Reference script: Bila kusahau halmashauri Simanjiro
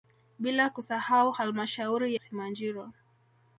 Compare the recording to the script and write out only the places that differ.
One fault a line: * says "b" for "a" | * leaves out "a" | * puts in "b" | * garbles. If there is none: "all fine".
all fine